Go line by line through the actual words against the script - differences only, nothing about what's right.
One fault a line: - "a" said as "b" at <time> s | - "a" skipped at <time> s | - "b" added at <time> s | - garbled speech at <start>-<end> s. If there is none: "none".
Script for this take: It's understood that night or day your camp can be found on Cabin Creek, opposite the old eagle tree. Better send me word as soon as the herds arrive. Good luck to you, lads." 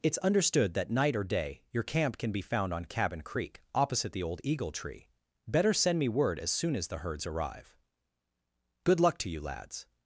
none